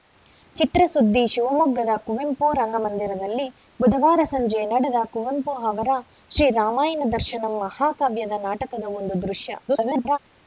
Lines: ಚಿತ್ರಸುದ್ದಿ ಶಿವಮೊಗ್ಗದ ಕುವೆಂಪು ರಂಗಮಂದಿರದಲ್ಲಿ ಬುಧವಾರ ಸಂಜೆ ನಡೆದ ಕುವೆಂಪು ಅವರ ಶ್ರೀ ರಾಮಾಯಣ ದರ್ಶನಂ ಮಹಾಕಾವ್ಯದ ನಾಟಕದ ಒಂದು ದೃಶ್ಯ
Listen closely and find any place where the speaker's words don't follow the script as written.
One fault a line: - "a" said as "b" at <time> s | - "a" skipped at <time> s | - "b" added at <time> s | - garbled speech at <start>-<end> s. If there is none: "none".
- garbled speech at 9.7-10.2 s